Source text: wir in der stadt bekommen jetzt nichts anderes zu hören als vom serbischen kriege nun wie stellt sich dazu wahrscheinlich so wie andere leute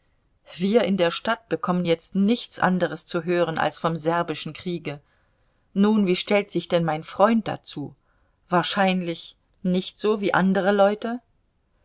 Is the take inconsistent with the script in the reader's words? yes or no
yes